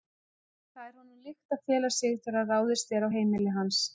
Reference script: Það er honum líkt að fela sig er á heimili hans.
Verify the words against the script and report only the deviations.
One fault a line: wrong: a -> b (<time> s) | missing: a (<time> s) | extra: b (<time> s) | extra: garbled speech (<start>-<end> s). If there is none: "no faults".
extra: þegar ráðist (2.2 s)